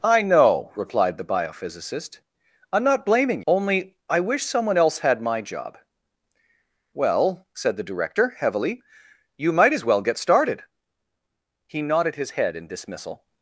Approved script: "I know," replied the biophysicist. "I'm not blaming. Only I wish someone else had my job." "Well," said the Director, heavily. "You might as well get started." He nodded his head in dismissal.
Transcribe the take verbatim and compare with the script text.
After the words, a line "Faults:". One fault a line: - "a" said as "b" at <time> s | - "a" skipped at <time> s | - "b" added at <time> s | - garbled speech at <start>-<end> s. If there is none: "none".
"I know," replied the biophysicist. "I'm not blaming. Only I wish someone else had my job." "Well," said the Director, heavily. "You might as well get started." He nodded his head in dismissal.
Faults:
none